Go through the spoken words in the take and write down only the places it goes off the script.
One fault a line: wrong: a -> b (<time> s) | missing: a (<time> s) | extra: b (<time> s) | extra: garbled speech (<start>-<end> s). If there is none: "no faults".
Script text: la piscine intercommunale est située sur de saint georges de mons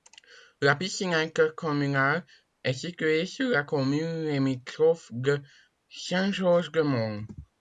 extra: la commune limitrophe (3.5 s)